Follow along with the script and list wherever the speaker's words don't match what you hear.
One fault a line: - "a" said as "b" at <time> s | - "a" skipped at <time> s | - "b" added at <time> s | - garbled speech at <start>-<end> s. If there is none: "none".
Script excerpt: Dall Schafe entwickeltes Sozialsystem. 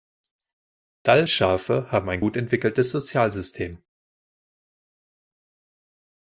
- "haben ein gut" added at 1.9 s